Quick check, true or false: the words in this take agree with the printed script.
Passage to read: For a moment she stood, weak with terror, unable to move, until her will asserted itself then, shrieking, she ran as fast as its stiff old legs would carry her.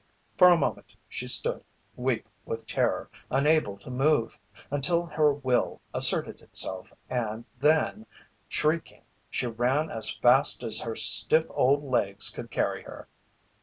false